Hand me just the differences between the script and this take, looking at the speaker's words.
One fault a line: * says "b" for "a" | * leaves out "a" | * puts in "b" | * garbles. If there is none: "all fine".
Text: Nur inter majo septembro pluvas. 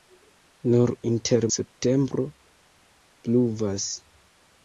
* leaves out "majo"